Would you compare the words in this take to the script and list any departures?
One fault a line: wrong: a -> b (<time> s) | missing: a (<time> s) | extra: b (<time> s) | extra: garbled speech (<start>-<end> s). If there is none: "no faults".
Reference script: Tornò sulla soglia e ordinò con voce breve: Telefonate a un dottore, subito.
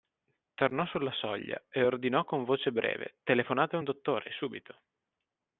no faults